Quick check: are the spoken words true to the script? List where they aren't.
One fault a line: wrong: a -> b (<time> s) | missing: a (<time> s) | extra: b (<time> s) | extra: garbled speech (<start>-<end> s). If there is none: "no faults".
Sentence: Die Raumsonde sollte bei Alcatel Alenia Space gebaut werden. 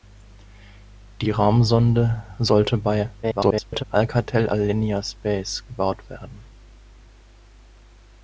extra: garbled speech (3.2-3.8 s)